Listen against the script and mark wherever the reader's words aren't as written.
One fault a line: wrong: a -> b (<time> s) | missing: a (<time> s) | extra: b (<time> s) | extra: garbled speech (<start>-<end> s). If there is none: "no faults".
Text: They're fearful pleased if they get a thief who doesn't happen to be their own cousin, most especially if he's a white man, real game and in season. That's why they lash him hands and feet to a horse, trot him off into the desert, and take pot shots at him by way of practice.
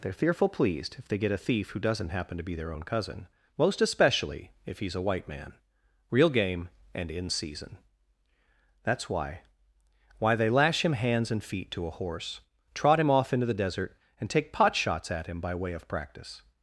extra: why (10.2 s)